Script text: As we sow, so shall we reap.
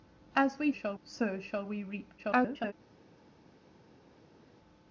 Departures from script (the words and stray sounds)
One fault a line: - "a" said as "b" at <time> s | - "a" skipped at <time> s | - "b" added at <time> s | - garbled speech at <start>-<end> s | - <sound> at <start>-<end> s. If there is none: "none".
- "sow" said as "shall" at 0.7 s
- garbled speech at 2.2-2.7 s